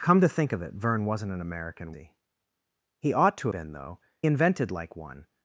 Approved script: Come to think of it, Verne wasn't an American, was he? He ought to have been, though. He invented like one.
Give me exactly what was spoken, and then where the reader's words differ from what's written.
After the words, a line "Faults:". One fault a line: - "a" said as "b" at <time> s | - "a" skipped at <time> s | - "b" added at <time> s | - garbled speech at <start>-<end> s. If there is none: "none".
Come to think of it, Verne wasn't an American, he? He ought to been, though. Invented like one.
Faults:
- "was" skipped at 1.9 s
- "have" skipped at 3.5 s
- "He" skipped at 4.0 s